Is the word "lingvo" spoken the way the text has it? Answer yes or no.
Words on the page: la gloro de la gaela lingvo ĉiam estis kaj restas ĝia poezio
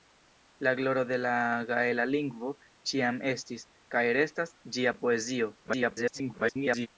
yes